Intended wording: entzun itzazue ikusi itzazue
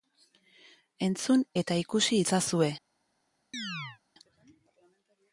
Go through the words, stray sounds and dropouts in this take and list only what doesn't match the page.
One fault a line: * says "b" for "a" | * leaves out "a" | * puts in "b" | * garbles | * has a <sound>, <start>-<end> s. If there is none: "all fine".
* says "eta" for "itzazue"
* has a chirp, 3.5-4.0 s